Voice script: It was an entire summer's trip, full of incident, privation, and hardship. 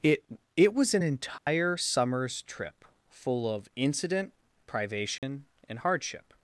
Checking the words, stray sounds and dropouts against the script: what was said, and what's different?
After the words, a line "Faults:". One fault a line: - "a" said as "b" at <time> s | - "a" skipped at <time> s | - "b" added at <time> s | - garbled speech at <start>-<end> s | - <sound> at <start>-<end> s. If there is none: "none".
It it was an entire summer's trip, full of incident, privation, and hardship.
Faults:
- "it" added at 0.6 s
- dropout at 1.4-1.5 s
- dropout at 5.2-5.2 s